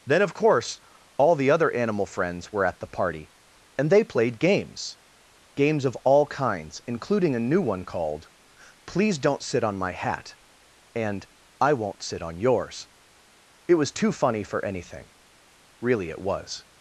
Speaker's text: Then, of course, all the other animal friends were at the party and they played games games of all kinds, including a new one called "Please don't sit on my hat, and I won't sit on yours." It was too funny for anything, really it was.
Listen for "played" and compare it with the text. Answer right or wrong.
right